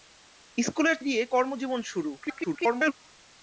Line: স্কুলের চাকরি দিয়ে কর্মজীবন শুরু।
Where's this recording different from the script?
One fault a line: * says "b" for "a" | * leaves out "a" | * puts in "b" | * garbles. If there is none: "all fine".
* leaves out "চাকরি"
* garbles